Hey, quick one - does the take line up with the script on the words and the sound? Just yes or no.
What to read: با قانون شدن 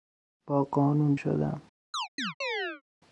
no